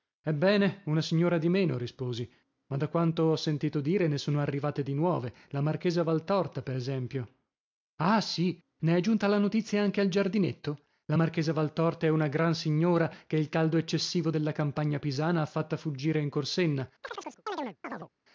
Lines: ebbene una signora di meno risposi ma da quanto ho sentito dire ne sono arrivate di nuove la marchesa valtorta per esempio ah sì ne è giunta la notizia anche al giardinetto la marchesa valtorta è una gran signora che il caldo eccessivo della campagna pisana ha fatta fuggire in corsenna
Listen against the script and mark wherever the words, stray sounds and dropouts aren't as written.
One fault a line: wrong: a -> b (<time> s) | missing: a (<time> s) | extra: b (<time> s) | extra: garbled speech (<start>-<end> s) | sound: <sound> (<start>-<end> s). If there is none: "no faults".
sound: chirp (17.0-18.1 s)